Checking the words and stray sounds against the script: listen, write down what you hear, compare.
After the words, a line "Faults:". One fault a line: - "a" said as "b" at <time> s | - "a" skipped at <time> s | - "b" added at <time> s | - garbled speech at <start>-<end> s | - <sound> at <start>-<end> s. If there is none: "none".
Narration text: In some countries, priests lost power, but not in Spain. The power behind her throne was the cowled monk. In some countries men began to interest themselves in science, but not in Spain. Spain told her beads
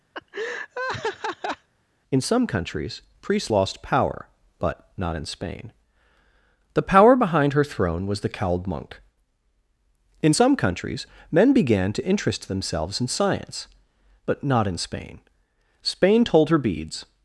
In some countries, priests lost power, but not in Spain. The power behind her throne was the cowled monk. In some countries men began to interest themselves in science, but not in Spain. Spain told her beads
Faults:
- laugh at 0.1-1.7 s